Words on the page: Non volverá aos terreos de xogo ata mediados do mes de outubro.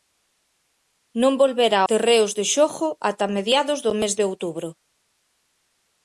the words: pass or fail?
fail